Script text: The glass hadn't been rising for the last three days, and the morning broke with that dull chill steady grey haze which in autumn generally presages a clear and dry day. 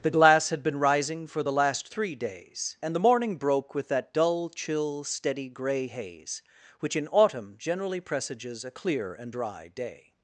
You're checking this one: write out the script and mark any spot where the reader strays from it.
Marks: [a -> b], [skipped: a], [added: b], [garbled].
The glass [hadn't -> had] been rising for the last three days, and the morning broke with that dull chill steady grey haze which in autumn generally presages a clear and dry day.